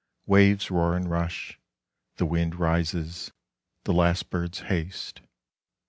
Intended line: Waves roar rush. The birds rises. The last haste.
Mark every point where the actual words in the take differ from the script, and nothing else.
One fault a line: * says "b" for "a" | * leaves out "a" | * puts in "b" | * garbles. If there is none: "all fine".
* puts in "and"
* says "wind" for "birds"
* puts in "birds"